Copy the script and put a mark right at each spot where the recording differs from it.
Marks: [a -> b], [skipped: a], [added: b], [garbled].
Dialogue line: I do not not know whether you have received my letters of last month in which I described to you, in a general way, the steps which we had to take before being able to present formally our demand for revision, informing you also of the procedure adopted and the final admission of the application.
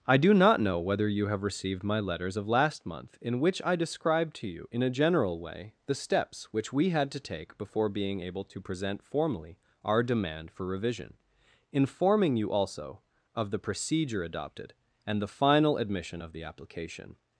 I do not [skipped: not] know whether you have received my letters of last month in which I described to you, in a general way, the steps which we had to take before being able to present formally our demand for revision, informing you also of the procedure adopted and the final admission of the application.